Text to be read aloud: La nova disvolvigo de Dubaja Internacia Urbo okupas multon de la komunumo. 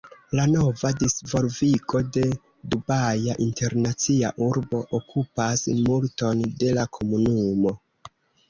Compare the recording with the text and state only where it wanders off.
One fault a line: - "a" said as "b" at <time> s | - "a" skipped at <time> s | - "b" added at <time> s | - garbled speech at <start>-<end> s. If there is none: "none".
none